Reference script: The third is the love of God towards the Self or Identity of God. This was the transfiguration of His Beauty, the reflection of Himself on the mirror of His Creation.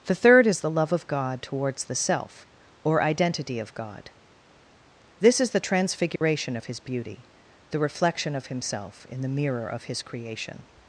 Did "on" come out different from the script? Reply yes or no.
yes